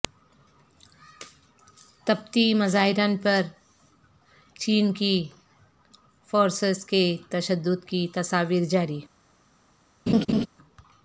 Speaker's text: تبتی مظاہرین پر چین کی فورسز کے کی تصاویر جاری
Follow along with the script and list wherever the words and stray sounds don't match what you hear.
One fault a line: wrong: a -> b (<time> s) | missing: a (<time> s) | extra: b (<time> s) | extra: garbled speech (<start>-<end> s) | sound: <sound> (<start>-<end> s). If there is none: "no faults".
extra: تشدد (7.3 s)
sound: laugh (10.1-10.5 s)